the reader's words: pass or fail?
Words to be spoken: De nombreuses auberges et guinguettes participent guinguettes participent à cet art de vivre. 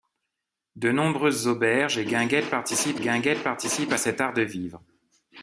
pass